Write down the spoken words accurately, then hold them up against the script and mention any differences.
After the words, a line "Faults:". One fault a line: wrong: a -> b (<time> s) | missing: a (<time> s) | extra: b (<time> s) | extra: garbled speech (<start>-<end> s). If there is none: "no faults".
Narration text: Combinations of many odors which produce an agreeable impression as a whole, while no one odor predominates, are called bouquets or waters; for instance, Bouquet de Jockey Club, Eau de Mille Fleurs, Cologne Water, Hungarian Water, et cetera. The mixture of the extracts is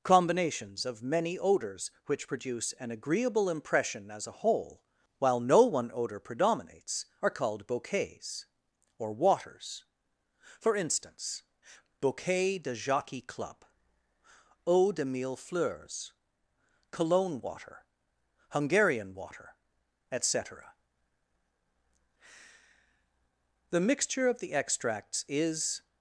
Combinations of many odors which produce an agreeable impression as a whole, while no one odor predominates, are called bouquets or waters; for instance, Bouquet de Jockey Club, Eau de Mille Fleurs, Cologne Water, Hungarian Water, et cetera. The mixture of the extracts is
Faults:
no faults